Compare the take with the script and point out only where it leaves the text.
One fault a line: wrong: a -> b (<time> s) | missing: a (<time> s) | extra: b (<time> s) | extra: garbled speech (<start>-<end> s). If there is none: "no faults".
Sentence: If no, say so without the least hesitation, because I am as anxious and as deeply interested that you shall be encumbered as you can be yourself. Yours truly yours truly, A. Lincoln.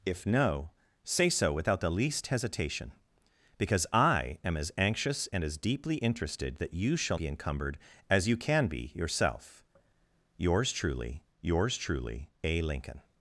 no faults